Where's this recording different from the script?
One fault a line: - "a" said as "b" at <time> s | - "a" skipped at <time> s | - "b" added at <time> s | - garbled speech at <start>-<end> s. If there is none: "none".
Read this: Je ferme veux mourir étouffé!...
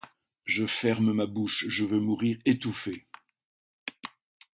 - "ma bouche je" added at 1.1 s